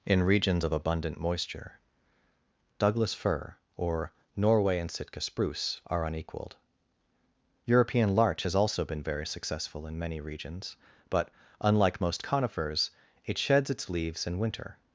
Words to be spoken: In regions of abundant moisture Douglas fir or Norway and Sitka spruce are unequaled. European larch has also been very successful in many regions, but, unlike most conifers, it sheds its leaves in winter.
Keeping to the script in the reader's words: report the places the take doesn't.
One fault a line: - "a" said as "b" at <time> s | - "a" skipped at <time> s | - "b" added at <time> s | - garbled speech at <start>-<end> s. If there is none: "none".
none